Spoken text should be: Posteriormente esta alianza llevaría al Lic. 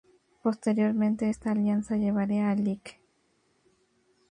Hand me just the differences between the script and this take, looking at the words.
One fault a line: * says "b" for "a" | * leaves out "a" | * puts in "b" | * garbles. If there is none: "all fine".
all fine